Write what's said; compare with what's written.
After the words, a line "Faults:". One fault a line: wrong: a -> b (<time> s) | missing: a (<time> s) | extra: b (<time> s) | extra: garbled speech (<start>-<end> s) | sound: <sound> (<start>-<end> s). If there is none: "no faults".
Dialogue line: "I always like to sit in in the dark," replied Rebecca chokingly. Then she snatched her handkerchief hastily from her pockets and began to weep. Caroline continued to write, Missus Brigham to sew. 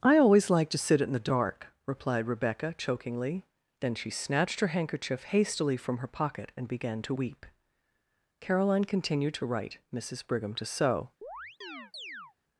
"I always like to sit in the dark," replied Rebecca chokingly. Then she snatched her handkerchief hastily from her pocket and began to weep. Caroline continued to write, Missus Brigham to sew.
Faults:
missing: in (1.1 s)
wrong: pockets -> pocket (6.1 s)
sound: chirp (11.2-12.3 s)